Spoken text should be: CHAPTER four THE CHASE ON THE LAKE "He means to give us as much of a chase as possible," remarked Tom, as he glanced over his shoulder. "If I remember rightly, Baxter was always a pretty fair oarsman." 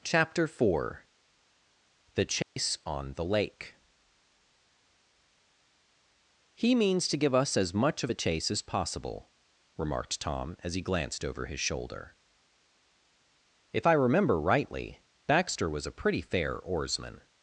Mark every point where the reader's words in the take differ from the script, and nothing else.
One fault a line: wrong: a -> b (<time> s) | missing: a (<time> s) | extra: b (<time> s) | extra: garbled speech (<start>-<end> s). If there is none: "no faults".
missing: always (15.8 s)